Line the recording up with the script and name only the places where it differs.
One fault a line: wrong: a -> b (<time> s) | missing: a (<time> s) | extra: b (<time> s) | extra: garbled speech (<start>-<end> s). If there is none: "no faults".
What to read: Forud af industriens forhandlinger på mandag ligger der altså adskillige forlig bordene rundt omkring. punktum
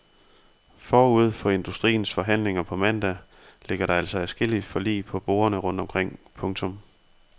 wrong: af -> for (1.3 s)
extra: på (5.0 s)